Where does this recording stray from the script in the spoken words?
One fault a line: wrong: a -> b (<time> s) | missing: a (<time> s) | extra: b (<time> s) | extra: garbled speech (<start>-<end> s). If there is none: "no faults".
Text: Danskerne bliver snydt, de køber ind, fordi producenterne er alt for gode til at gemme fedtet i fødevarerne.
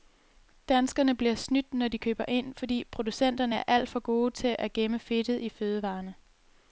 extra: når (1.7 s)